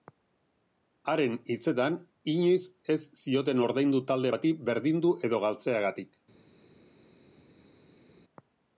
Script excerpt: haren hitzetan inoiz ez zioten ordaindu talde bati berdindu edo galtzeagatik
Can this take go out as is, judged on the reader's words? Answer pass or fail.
pass